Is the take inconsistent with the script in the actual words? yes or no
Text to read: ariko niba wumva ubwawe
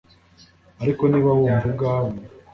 no